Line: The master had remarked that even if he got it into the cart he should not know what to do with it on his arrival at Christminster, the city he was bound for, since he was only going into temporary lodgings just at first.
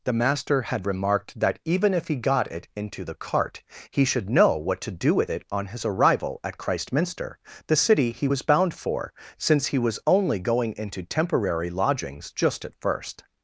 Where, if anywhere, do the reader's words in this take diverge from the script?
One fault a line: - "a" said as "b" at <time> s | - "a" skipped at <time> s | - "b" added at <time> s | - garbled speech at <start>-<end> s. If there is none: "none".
- "not" skipped at 4.3 s